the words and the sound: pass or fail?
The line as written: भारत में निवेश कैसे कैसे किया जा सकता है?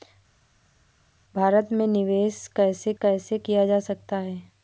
pass